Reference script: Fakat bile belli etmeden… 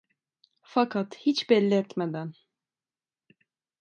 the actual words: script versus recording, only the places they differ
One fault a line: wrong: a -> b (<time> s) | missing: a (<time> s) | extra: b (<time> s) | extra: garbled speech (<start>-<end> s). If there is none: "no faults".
wrong: bile -> hiç (1.2 s)